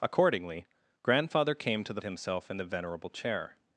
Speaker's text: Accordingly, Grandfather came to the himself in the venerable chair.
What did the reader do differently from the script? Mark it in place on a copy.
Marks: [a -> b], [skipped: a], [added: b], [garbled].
Accordingly, Grandfather came to the himself in the venerable chair.